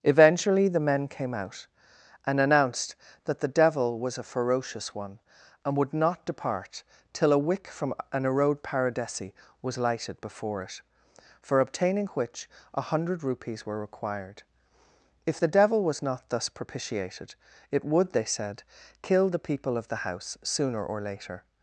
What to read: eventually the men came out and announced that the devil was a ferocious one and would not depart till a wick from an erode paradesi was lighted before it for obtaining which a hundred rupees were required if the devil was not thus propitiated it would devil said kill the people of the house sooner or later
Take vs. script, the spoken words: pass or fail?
fail